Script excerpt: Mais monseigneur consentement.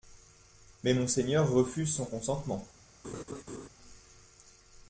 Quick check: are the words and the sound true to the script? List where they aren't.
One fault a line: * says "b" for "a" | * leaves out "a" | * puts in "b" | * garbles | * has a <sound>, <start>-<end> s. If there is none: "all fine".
* puts in "refuse son"
* has a laugh, 3.0-3.7 s